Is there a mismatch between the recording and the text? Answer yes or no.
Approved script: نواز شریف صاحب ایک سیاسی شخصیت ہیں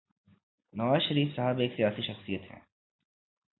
no